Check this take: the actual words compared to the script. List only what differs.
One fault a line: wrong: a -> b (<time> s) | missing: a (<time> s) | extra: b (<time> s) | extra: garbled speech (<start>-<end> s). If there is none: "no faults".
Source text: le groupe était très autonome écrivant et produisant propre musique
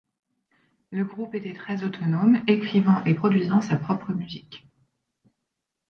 extra: sa (3.6 s)